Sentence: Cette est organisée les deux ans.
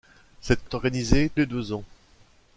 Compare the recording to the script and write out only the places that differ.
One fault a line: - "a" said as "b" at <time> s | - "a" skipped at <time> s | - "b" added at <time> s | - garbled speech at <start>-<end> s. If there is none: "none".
none